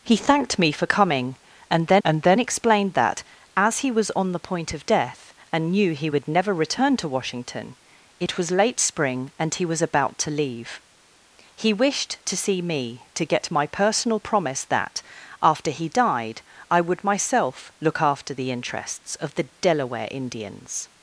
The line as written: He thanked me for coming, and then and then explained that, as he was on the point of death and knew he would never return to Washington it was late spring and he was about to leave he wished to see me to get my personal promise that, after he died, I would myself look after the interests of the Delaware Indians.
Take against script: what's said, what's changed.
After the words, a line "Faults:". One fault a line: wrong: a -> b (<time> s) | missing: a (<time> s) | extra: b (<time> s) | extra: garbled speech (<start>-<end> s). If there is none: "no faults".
He thanked me for coming, and then and then explained that, as he was on the point of death and knew he would never return to Washington it was late spring and he was about to leave he wished to see me to get my personal promise that, after he died, I would myself look after the interests of the Delaware Indians.
Faults:
no faults